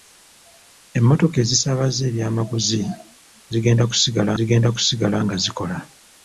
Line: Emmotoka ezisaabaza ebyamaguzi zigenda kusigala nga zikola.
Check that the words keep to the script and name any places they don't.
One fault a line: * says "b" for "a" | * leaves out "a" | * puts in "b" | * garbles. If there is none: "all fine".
* puts in "zigenda kusigala"